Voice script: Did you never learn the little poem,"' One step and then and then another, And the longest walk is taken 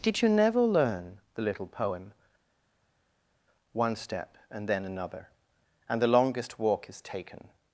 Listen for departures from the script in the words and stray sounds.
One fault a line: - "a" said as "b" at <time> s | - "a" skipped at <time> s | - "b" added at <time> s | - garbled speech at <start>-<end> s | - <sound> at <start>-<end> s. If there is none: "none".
- "and then" skipped at 4.9 s